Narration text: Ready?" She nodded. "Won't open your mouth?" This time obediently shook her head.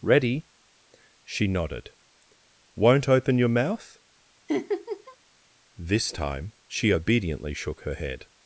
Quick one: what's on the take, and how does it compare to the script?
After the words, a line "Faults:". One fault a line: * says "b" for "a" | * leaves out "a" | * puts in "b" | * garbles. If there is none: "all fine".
Ready?" She nodded. "Won't open your mouth?" This time she obediently shook her head.
Faults:
* puts in "she"